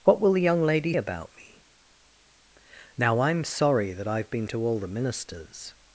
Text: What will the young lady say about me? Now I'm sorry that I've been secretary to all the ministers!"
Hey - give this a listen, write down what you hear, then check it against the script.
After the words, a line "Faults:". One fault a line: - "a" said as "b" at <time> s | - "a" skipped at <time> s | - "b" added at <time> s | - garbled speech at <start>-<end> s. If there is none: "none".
What will the young lady about me? Now I'm sorry that I've been to all the ministers!"
Faults:
- "say" skipped at 0.9 s
- "secretary" skipped at 4.5 s